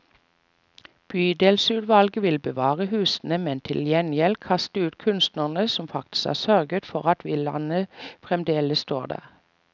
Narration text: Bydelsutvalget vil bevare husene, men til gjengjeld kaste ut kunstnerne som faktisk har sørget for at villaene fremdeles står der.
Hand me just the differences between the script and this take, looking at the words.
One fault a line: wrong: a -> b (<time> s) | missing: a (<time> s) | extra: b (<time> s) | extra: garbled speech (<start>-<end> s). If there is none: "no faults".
no faults